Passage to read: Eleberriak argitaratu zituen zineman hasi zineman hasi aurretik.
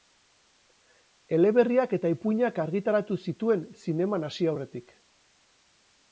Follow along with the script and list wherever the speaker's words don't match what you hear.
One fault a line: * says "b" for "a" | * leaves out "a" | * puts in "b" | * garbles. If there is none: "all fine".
* puts in "eta ipuinak"
* leaves out "zineman hasi"